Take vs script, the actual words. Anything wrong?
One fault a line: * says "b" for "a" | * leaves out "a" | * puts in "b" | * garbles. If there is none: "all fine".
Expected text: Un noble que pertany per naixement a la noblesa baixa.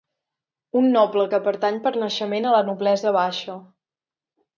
all fine